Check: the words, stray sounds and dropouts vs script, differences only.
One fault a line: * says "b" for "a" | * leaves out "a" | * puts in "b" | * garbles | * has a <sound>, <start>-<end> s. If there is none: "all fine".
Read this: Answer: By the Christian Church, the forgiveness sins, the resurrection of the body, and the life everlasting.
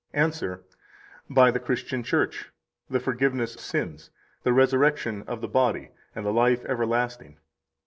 all fine